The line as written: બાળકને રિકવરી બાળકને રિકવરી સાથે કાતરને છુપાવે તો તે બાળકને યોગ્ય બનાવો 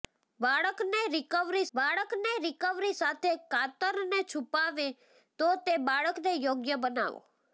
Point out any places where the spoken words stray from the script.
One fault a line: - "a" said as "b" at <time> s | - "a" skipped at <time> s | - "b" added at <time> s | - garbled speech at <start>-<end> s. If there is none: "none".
none